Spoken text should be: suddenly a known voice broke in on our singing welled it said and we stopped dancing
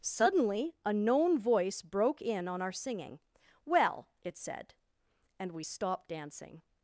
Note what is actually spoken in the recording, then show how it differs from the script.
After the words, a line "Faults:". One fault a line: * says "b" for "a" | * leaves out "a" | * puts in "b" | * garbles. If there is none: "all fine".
suddenly a known voice broke in on our singing well it said and we stopped dancing
Faults:
* says "well" for "welled"